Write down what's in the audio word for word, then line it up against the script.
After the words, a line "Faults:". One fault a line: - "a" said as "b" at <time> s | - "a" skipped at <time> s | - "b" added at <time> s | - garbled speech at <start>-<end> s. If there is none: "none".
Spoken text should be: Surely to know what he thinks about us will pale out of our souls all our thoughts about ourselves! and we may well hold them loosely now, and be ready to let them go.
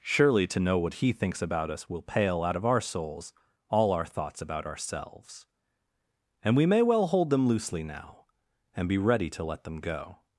Surely to know what he thinks about us will pale out of our souls all our thoughts about ourselves! and we may well hold them loosely now, and be ready to let them go.
Faults:
none